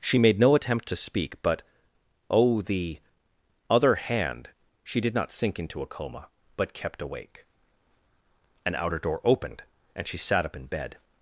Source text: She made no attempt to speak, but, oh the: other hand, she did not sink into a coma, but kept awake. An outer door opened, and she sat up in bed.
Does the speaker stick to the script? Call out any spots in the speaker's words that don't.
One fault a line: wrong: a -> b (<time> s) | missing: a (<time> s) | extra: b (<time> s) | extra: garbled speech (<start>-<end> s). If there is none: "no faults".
no faults